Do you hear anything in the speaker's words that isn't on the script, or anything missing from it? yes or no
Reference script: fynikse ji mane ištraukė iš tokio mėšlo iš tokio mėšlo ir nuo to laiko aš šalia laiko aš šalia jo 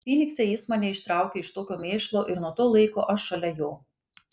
yes